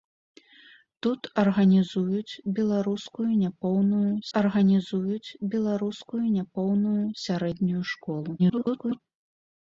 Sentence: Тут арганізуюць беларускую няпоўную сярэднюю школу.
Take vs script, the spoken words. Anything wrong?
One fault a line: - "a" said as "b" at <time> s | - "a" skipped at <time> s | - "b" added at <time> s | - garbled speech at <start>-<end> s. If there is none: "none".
- "арганізуюць беларускую няпоўную" added at 4.4 s
- garbled speech at 8.4-9.0 s